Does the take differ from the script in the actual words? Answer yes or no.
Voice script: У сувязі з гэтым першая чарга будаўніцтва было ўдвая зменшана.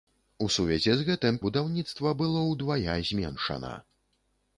yes